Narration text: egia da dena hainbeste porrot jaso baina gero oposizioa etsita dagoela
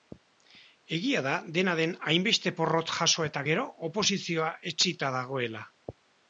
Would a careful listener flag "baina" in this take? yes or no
yes